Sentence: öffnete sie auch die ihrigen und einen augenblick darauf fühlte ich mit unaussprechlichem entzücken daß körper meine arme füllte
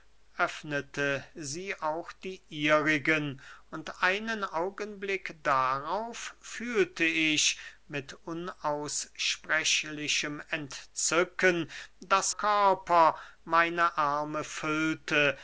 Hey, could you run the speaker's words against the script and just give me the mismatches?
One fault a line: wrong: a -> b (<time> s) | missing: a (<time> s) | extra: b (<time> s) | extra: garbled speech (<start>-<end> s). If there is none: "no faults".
no faults